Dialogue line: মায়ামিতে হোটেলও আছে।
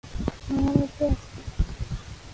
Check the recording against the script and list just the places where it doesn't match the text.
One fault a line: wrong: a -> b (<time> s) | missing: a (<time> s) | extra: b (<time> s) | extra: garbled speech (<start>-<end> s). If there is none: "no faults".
no faults